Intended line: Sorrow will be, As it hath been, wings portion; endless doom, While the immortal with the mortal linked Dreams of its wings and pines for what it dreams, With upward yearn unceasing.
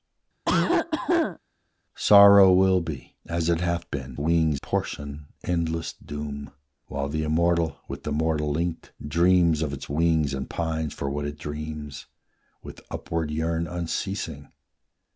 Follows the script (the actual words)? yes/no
yes